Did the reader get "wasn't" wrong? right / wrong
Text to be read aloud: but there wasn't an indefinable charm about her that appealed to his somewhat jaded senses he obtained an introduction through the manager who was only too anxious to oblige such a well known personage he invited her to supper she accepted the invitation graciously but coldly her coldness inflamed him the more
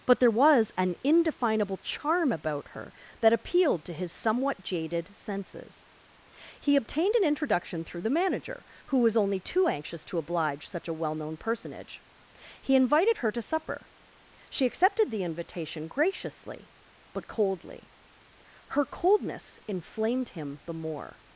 wrong